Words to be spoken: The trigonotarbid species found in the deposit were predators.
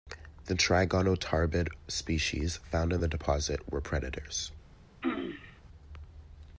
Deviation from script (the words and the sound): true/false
true